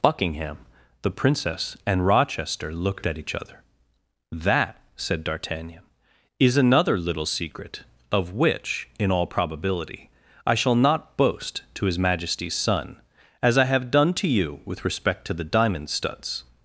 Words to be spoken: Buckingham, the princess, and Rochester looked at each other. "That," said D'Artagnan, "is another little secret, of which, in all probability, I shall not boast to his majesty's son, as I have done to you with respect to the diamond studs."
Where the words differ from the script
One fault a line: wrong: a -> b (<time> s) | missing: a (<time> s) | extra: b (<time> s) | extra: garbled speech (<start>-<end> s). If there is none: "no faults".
no faults